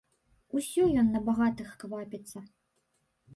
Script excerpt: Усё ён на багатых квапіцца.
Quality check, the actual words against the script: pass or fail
pass